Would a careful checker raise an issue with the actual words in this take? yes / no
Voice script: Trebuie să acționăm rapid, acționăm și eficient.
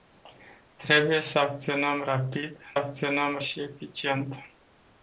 no